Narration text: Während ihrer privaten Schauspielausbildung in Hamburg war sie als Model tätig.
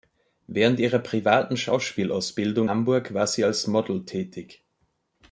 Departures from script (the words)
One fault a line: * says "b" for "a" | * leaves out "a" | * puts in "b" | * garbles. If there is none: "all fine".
* leaves out "in"